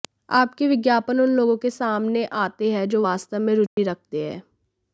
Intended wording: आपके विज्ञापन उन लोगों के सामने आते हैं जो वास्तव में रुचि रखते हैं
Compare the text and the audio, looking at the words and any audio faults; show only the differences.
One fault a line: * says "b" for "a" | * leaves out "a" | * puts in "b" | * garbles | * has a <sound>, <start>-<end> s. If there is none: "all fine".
* has a dropout, 3.7-3.8 s